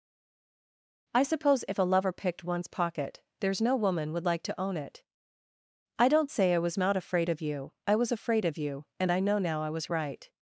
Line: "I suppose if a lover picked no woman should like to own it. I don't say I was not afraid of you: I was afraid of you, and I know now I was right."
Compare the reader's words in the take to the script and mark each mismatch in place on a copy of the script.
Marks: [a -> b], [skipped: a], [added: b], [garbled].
"I suppose if a lover picked [added: one's pocket there's] no woman [should -> would] like to own it. I don't say I was not afraid of you: I was afraid of you, and I know now I was right."